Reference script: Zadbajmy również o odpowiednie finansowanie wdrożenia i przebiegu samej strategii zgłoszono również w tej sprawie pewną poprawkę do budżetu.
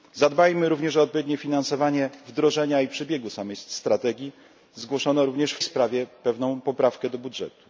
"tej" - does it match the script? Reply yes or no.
no